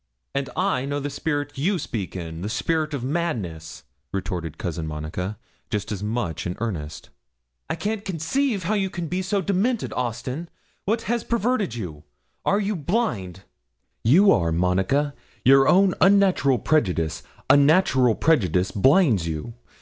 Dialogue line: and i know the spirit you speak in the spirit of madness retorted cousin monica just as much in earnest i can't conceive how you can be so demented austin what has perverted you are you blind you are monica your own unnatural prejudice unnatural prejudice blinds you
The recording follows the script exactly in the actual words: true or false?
true